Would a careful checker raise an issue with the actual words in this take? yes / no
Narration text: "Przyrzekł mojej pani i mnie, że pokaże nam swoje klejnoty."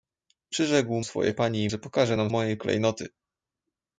yes